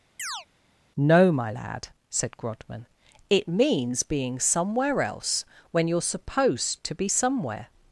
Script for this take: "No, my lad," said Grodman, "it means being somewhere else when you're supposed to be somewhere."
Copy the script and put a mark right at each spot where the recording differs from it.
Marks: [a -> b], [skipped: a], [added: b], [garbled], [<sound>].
[chirp] "No, my lad," said Grodman, "it means being somewhere else when you're supposed to be somewhere."